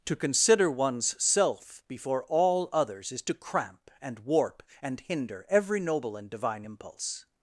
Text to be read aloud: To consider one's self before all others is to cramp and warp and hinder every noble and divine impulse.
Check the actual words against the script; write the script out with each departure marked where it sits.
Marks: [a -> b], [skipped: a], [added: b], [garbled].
To consider one's self before all others is to cramp and warp and hinder every noble and divine impulse.